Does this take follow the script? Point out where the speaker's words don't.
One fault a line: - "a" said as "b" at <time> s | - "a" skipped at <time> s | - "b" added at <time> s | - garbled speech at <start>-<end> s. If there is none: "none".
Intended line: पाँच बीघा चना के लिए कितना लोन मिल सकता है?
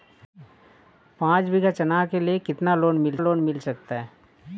- "लोन मिल" added at 3.2 s